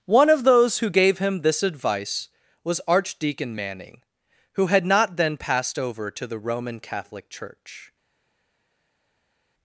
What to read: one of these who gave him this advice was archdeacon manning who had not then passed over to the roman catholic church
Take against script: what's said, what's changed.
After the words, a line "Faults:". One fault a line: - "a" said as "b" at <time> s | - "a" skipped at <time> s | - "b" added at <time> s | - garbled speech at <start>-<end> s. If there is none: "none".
one of those who gave him this advice was archdeacon manning who had not then passed over to the roman catholic church
Faults:
- "these" said as "those" at 0.5 s